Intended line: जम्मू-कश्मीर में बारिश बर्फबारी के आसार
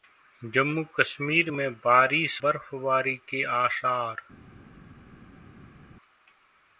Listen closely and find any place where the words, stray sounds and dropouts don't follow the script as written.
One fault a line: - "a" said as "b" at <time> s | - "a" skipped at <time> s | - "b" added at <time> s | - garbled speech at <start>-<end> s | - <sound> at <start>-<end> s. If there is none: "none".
none